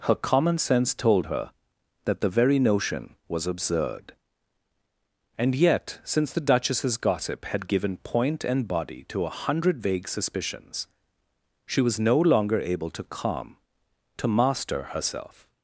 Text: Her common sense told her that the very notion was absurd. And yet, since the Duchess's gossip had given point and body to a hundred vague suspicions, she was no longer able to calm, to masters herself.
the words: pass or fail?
fail